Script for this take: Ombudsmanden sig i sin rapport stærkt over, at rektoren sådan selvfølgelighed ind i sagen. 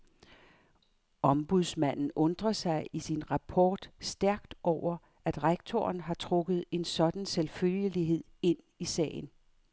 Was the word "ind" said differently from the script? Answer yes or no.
no